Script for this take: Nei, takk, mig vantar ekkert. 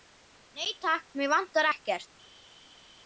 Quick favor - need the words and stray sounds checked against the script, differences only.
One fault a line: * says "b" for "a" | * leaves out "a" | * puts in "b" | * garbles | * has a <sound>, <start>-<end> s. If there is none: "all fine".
all fine